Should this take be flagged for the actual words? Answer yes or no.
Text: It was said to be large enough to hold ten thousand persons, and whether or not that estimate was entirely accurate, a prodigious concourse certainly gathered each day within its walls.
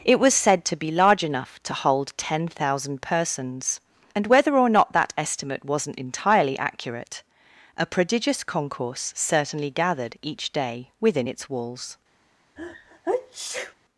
yes